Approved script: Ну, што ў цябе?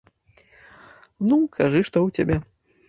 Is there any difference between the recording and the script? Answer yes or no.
yes